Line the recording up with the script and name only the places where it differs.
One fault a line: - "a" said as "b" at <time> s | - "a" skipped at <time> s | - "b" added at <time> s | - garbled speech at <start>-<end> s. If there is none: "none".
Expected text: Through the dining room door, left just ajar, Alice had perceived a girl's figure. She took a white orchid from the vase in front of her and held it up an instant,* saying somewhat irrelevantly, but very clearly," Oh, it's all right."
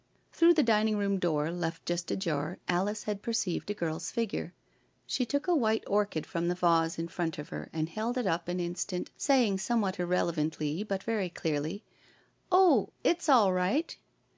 none